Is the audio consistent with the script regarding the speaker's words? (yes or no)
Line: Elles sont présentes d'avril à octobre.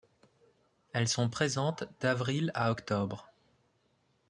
yes